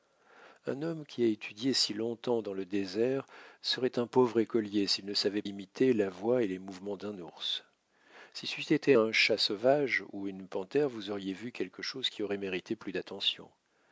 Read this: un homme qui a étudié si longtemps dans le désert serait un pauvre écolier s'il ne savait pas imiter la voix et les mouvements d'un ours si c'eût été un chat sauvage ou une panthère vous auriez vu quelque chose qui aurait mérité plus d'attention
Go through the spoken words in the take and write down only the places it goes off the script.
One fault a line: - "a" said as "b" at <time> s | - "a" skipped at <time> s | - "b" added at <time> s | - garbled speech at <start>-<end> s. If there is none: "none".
- "pas" skipped at 5.4 s